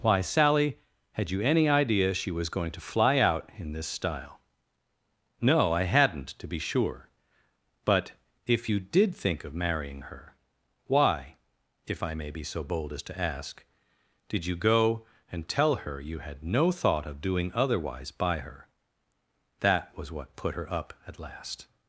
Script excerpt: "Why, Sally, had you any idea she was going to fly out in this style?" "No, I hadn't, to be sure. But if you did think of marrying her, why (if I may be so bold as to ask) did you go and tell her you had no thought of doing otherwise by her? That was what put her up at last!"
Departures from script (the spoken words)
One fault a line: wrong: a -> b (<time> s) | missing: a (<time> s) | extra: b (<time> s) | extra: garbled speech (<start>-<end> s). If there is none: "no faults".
no faults